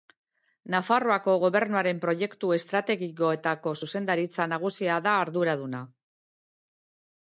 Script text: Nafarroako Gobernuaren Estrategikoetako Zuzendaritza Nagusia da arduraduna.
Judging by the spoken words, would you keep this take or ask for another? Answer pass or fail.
fail